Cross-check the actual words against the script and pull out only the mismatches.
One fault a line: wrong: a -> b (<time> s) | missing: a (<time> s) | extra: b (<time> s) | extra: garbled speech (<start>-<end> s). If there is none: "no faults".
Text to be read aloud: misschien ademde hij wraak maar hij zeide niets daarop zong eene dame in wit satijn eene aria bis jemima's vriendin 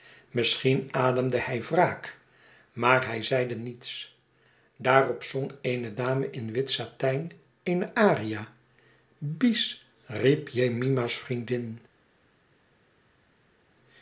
extra: riep (10.1 s)